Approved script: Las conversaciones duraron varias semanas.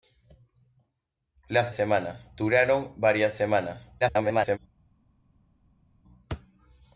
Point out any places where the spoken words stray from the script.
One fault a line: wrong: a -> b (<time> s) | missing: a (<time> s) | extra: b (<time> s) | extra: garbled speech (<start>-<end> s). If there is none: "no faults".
wrong: conversaciones -> semanas (1.7 s)
extra: garbled speech (4.0-4.6 s)